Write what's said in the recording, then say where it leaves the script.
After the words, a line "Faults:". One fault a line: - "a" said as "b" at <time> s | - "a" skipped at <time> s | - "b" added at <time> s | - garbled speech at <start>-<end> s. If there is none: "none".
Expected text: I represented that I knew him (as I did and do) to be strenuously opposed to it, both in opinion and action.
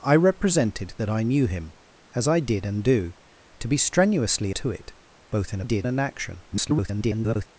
I represented that I knew him (as I did and do) to be strenuously to it, both in did and action. [garbled]
Faults:
- "opposed" skipped at 4.5 s
- "opinion" said as "did" at 5.6 s
- garbled speech at 6.5-7.5 s